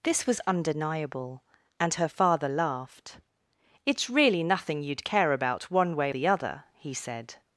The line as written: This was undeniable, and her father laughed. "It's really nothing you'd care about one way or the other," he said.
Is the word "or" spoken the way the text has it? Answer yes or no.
no